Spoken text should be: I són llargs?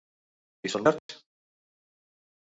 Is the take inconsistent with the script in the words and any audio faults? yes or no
yes